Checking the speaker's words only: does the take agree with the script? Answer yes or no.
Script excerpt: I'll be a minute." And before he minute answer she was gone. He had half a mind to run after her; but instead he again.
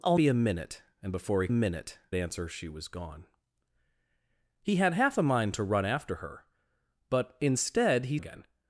yes